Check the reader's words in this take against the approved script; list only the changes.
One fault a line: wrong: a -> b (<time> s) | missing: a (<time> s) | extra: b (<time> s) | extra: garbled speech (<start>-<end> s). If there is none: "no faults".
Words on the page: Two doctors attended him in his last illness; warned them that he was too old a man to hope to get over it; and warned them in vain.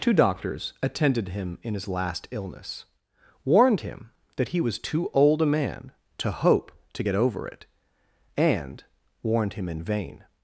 wrong: them -> him (3.8 s)
wrong: them -> him (9.5 s)